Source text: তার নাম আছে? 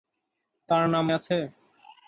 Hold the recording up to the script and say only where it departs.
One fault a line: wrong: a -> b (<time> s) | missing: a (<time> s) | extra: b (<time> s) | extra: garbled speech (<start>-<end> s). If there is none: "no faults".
no faults